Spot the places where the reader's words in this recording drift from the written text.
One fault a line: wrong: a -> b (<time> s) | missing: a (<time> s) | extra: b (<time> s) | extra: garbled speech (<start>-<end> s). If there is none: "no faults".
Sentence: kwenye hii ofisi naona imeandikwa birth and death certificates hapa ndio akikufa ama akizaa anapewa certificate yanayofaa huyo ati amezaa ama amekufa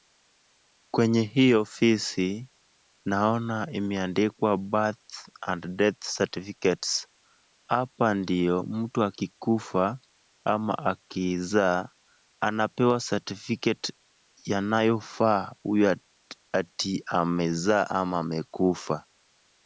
extra: mtu (8.6 s)